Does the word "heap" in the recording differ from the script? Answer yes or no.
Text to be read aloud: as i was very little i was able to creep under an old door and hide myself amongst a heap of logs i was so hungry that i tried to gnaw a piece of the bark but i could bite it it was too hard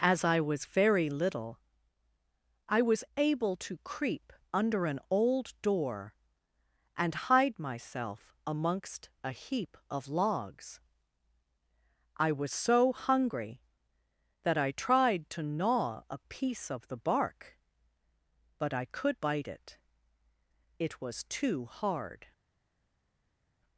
no